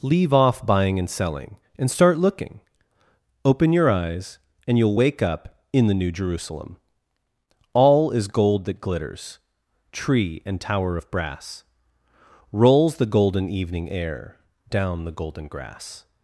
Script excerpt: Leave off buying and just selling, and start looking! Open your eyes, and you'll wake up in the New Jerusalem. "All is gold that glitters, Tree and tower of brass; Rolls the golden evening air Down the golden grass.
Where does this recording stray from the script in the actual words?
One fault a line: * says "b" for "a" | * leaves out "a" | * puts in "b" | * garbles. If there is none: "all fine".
* leaves out "just"